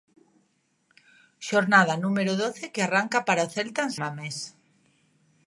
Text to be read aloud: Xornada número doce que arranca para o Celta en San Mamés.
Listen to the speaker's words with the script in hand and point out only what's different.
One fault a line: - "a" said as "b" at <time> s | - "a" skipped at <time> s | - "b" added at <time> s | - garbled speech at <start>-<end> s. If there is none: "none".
- "San" skipped at 3.9 s